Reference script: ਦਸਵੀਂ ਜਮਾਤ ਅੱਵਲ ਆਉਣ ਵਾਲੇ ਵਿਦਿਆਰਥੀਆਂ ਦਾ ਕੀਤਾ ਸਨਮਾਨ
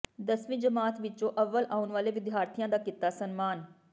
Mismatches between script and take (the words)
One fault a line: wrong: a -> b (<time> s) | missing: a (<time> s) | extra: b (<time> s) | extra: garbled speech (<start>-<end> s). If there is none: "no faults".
extra: ਵਿੱਚੋਂ (1.0 s)